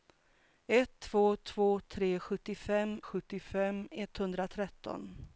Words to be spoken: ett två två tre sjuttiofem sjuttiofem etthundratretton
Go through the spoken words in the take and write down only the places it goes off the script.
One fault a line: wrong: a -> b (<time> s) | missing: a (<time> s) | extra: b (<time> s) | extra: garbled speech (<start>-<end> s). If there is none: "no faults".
no faults